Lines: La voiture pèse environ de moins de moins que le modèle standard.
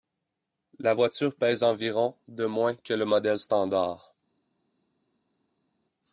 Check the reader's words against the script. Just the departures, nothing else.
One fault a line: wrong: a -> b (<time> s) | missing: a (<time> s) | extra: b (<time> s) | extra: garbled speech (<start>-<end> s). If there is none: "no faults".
missing: de moins (2.7 s)